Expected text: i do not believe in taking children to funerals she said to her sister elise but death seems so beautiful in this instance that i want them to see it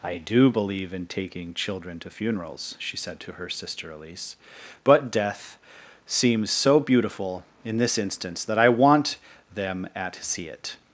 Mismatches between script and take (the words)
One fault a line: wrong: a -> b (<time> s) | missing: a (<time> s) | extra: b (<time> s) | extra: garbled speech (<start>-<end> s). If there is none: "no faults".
missing: not (0.5 s)
wrong: to -> at (9.9 s)